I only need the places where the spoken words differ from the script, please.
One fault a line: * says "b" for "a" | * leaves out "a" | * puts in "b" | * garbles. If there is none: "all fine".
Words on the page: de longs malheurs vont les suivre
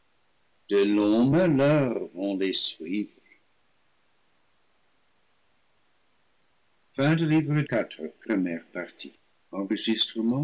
all fine